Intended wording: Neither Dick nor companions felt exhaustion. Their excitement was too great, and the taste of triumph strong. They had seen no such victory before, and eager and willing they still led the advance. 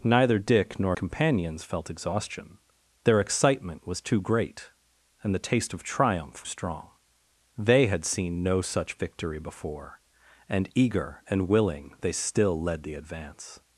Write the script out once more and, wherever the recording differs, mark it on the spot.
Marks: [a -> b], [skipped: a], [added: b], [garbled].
Neither Dick nor companions felt exhaustion. Their excitement was too great, and the taste of triumph strong. They had seen no such victory before, and eager and willing they still led the advance.